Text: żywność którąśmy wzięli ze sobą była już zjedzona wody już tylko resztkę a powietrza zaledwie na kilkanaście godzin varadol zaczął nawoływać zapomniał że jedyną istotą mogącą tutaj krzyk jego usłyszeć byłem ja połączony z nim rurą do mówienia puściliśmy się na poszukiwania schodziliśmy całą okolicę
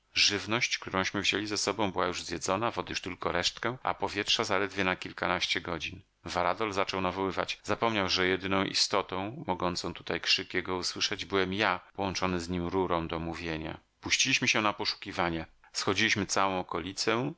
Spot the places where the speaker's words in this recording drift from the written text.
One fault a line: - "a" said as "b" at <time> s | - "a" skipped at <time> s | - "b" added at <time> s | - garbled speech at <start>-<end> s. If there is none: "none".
none